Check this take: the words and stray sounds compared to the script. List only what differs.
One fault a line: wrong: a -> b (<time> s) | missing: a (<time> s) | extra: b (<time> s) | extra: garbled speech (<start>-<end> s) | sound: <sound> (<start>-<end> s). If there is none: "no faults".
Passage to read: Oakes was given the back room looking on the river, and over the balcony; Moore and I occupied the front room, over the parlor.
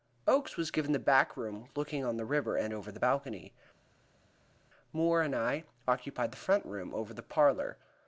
no faults